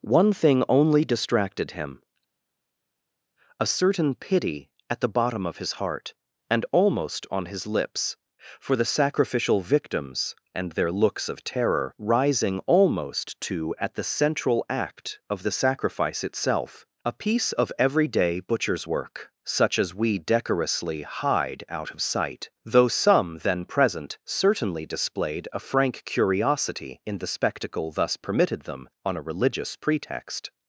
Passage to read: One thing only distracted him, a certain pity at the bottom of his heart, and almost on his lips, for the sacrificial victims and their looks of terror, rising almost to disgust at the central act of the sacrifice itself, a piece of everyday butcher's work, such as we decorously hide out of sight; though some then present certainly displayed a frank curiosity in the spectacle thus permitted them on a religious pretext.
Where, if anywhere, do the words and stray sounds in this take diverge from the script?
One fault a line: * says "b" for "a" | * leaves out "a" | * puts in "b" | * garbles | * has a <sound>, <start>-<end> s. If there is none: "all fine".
* leaves out "disgust"